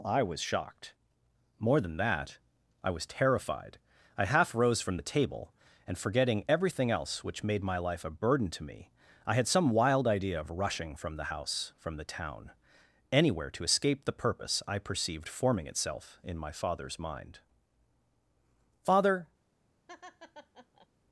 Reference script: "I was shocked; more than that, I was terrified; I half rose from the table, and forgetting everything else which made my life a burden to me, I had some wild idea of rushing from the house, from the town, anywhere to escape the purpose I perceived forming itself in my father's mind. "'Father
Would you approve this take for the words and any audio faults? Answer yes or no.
no